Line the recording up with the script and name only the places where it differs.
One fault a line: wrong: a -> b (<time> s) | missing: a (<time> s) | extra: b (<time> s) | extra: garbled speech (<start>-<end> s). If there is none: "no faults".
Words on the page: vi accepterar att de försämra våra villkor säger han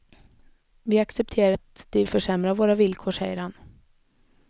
no faults